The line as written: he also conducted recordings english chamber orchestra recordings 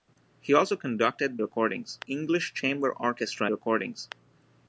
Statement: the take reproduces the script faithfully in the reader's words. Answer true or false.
true